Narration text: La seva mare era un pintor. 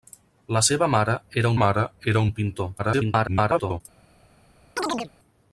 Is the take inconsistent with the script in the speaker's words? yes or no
yes